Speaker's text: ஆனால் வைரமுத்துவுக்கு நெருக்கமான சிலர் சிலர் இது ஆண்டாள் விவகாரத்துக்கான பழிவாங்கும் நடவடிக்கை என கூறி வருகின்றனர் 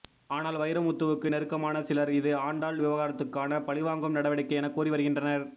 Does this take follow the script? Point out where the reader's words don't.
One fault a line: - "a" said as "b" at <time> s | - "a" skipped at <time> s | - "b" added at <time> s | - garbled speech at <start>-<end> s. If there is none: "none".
- "சிலர்" skipped at 2.1 s